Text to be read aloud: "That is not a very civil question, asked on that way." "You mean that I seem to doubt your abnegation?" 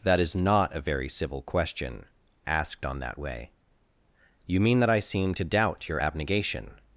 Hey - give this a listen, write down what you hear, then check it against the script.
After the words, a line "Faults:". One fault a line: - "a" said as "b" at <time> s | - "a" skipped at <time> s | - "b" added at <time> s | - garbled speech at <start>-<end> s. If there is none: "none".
"That is not a very civil question, asked on that way." "You mean that I seem to doubt your abnegation?"
Faults:
none